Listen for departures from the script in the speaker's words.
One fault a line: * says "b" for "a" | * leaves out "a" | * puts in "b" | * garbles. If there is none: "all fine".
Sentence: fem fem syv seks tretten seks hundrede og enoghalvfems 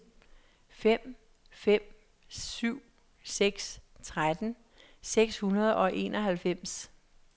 all fine